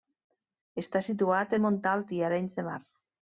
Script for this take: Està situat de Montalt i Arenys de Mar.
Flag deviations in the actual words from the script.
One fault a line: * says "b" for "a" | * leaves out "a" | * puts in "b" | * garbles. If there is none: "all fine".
all fine